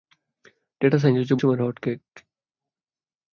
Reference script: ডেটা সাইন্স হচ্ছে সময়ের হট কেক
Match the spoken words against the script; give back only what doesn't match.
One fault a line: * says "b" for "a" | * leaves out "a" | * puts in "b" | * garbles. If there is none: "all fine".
all fine